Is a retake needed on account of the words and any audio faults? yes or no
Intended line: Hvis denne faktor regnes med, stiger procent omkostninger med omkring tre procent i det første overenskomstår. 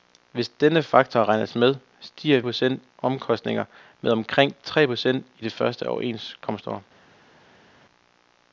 no